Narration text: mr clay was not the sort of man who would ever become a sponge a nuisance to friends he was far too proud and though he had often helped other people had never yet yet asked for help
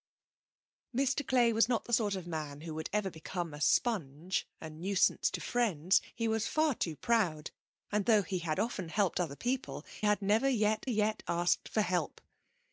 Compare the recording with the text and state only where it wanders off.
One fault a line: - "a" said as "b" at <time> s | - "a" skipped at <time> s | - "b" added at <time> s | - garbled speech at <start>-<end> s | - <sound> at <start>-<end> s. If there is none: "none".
none